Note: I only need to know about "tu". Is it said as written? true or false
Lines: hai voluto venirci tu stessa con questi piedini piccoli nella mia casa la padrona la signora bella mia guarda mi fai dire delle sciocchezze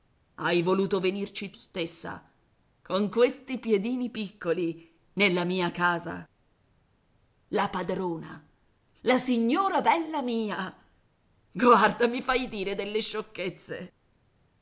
false